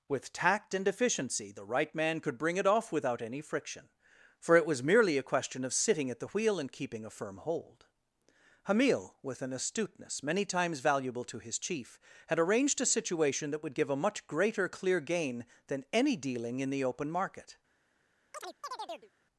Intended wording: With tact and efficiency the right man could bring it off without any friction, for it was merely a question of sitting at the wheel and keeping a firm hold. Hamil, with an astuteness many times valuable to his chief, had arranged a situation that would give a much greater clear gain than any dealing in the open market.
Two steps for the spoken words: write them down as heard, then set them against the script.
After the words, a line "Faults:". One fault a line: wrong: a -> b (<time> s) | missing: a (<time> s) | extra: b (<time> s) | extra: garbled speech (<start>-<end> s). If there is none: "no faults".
With tact and efficiency the right man could bring it off without any friction, for it was merely a question of sitting at the wheel and keeping a firm hold. Hamil, with an astuteness many times valuable to his chief, had arranged a situation that would give a much greater clear gain than any dealing in the open market.
Faults:
no faults